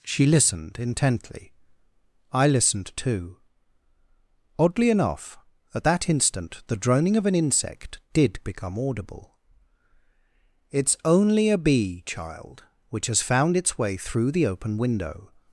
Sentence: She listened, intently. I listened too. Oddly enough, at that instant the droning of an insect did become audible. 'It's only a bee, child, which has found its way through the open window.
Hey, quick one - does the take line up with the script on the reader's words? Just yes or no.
yes